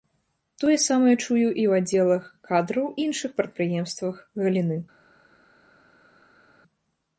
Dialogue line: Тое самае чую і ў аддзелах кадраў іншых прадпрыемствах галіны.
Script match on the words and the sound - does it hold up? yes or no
yes